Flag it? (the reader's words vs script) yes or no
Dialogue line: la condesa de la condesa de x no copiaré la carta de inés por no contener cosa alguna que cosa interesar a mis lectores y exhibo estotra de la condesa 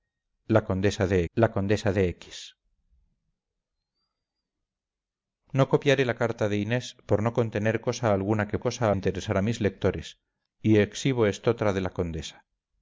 no